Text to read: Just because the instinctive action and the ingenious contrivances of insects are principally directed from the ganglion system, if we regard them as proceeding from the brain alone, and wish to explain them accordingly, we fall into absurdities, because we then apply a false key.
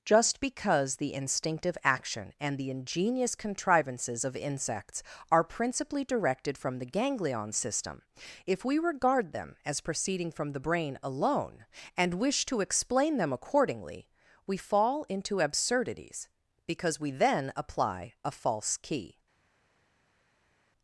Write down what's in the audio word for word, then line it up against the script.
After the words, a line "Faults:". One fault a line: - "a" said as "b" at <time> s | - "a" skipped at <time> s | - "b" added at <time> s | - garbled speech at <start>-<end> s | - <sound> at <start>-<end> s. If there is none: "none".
Just because the instinctive action and the ingenious contrivances of insects are principally directed from the ganglion system, if we regard them as proceeding from the brain alone, and wish to explain them accordingly, we fall into absurdities, because we then apply a false key.
Faults:
none